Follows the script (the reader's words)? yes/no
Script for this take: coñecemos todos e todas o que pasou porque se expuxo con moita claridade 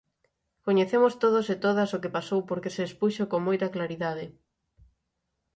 yes